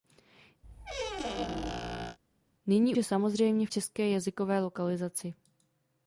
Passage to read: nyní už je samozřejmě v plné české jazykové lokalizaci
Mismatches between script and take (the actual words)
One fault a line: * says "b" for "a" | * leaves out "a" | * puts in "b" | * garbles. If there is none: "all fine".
* leaves out "už"
* leaves out "plné"